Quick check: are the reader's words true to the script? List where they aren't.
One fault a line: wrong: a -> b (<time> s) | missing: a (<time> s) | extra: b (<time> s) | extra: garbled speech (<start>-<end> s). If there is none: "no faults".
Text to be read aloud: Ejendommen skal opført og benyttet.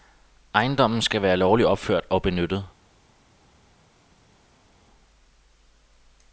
extra: være lovligt (1.2 s)